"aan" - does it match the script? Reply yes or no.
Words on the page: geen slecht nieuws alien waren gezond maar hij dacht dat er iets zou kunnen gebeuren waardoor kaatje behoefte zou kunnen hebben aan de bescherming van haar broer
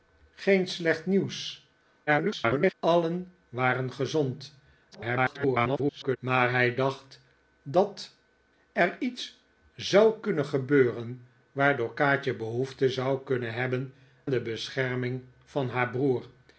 no